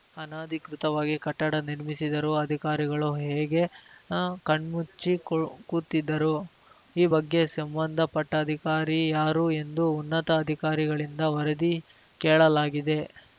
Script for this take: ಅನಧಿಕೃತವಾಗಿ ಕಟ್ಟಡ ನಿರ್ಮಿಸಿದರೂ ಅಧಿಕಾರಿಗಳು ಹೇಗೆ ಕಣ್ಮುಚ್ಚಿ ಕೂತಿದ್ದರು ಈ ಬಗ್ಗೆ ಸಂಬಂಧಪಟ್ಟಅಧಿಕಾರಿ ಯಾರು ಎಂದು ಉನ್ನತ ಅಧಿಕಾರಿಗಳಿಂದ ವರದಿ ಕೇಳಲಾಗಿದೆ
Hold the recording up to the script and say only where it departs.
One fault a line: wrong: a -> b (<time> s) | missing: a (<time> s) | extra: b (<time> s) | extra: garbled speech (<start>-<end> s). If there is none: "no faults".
no faults